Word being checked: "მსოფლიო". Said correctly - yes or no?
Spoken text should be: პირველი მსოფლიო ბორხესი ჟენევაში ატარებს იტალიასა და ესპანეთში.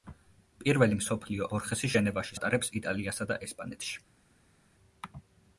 yes